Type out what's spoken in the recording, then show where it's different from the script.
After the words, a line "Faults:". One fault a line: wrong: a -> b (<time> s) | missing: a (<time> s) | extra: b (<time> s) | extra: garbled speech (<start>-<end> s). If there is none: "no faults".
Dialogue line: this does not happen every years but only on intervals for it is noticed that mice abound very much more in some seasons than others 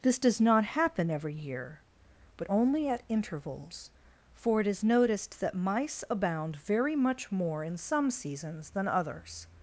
this does not happen every year but only at intervals for it is noticed that mice abound very much more in some seasons than others
Faults:
wrong: years -> year (1.4 s)
wrong: on -> at (2.9 s)